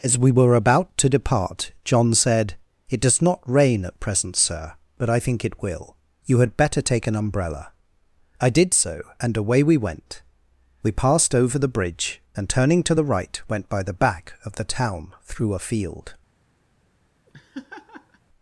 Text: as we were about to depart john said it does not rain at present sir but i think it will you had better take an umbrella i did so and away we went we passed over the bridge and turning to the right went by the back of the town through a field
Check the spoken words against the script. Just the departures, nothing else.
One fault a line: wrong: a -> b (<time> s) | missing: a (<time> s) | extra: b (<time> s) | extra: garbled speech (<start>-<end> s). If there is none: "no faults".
no faults